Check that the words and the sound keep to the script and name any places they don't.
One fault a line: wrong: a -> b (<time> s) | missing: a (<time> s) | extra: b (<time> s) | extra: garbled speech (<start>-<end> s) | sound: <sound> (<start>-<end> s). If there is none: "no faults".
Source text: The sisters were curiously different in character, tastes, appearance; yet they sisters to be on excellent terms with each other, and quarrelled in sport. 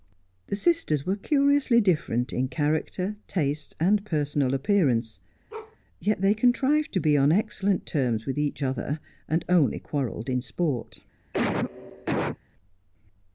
extra: and personal (3.8 s)
sound: bark (5.5-5.8 s)
wrong: sisters -> contrived (6.3 s)
extra: only (9.5 s)
sound: cough (11.3-12.4 s)